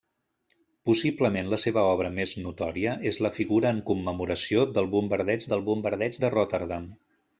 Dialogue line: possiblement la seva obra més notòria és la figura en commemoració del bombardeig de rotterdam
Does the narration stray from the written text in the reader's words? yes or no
yes